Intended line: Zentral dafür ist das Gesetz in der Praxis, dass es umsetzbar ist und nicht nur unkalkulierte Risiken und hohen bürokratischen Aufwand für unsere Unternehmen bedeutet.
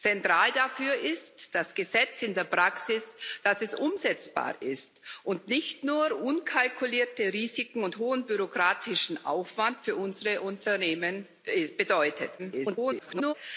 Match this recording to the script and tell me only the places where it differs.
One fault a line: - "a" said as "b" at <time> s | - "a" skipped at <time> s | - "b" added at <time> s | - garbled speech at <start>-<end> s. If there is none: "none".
- garbled speech at 12.4-13.3 s